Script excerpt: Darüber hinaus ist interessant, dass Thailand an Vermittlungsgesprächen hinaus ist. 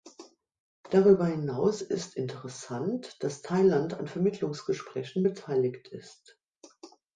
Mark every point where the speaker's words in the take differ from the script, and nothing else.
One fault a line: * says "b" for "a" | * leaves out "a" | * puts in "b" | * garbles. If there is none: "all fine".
* says "beteiligt" for "hinaus"